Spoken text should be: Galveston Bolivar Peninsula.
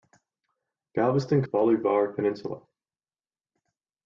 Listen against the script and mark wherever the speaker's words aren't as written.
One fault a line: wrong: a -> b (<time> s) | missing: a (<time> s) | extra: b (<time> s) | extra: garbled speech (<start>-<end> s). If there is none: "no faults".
no faults